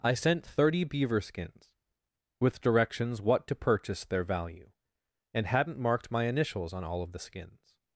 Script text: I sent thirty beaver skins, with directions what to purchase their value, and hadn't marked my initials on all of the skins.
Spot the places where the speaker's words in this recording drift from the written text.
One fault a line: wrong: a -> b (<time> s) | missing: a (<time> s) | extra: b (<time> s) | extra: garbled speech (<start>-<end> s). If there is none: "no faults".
no faults